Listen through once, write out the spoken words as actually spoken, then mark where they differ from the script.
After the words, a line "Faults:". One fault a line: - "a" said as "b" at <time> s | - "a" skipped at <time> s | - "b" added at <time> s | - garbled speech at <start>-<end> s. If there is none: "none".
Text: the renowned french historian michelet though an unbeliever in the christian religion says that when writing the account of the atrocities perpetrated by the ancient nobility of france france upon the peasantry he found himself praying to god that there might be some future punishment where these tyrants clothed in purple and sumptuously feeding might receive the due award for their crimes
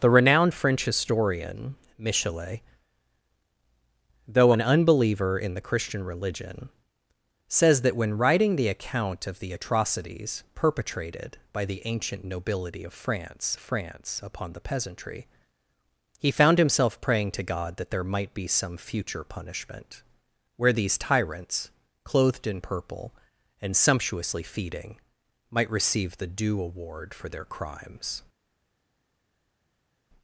the renowned french historian michelet though an unbeliever in the christian religion says that when writing the account of the atrocities perpetrated by the ancient nobility of france france upon the peasantry he found himself praying to god that there might be some future punishment where these tyrants clothed in purple and sumptuously feeding might receive the due award for their crimes
Faults:
none